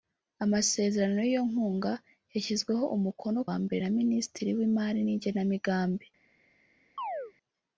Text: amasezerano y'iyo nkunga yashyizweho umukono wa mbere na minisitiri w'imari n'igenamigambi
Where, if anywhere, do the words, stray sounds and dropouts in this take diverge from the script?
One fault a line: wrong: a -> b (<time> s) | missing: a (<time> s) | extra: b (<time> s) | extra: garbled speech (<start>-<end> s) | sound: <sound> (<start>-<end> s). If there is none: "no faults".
sound: chirp (7.0-7.3 s)